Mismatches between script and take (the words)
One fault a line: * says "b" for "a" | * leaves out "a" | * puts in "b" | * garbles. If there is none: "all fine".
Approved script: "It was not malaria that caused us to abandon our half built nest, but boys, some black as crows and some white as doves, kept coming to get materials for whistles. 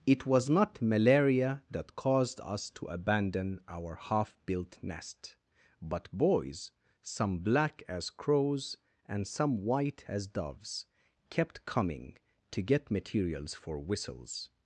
all fine